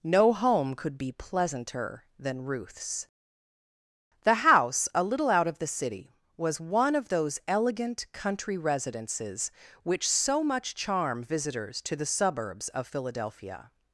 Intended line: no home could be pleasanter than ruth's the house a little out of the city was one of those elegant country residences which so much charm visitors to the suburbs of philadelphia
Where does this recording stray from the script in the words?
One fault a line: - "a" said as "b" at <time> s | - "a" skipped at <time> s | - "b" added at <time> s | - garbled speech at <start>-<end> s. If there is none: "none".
none